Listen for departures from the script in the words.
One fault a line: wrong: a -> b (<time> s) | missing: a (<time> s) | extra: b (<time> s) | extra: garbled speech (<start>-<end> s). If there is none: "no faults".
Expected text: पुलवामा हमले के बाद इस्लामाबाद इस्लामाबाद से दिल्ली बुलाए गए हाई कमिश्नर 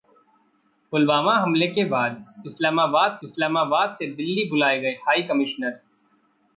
no faults